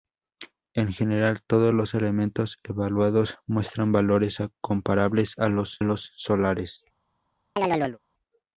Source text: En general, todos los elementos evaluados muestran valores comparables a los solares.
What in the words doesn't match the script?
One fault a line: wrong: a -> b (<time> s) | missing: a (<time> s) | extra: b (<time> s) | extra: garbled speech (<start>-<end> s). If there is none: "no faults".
extra: los (5.8 s)